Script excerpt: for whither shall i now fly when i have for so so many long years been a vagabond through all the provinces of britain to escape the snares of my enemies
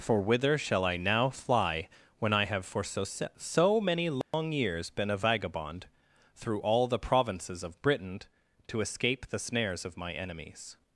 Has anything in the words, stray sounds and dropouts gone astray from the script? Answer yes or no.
yes